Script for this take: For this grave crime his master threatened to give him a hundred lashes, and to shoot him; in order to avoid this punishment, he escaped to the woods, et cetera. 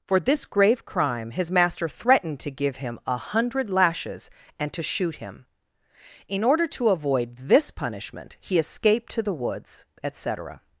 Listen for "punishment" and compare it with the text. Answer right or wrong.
right